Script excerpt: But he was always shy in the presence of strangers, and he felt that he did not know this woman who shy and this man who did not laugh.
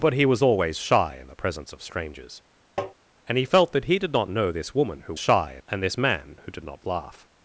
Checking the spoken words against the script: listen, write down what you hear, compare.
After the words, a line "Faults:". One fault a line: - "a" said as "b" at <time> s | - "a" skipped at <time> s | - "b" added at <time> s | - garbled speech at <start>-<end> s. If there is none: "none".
But he was always shy in the presence of strangers, and he felt that he did not know this woman who shy and this man who did not laugh.
Faults:
none